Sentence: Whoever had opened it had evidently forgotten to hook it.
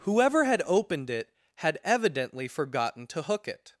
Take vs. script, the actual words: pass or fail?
pass